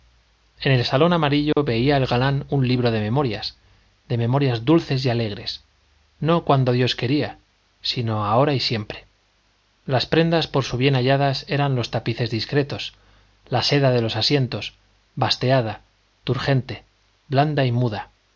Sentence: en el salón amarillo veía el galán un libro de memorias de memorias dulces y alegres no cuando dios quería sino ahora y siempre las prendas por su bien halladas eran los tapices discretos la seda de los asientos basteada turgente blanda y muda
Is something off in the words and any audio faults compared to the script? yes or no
yes